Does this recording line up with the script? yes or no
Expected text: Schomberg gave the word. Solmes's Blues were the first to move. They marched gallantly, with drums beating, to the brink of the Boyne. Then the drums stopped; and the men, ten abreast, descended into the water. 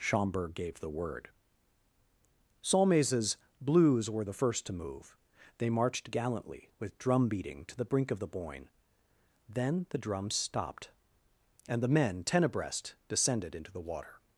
no